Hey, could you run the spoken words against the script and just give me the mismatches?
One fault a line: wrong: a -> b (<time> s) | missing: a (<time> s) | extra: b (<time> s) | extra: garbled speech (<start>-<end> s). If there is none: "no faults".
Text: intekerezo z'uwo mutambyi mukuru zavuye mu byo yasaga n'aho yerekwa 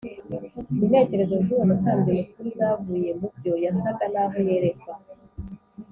no faults